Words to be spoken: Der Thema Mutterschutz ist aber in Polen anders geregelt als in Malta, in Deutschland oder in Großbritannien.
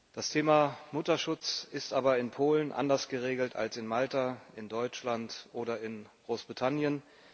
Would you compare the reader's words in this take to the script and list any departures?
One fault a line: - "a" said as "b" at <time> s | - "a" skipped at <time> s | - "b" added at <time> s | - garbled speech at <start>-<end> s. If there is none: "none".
- "Der" said as "Das" at 0.1 s